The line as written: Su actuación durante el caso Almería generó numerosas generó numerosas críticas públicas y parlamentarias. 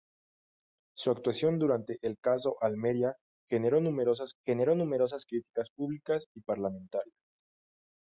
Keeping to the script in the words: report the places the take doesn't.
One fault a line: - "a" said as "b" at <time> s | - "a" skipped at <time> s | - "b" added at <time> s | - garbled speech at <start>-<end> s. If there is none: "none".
none